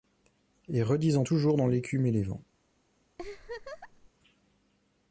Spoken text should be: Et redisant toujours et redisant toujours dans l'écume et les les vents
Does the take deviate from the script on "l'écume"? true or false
false